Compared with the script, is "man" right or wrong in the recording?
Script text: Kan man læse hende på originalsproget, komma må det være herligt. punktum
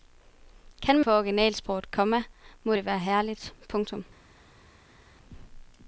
wrong